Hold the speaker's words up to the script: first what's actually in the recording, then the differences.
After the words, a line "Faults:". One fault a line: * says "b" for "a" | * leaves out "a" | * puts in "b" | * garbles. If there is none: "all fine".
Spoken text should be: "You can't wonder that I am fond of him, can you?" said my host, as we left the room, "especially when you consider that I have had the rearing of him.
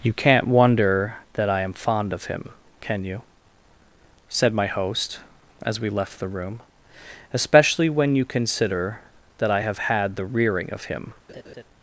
"You can't wonder that I am fond of him, can you?" said my host, as we left the room, "especially when you consider that I have had the rearing of him.
Faults:
all fine